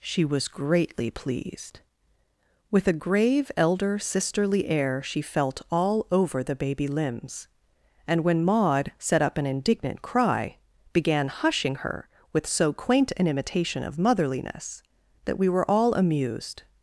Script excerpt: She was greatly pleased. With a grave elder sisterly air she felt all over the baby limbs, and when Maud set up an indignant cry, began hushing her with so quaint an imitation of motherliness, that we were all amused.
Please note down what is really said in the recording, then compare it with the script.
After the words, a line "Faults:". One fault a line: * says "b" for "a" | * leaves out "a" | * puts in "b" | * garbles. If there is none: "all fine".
She was greatly pleased. With a grave elder sisterly air she felt all over the baby limbs, and when Maud set up an indignant cry, began hushing her with so quaint an imitation of motherliness, that we were all amused.
Faults:
all fine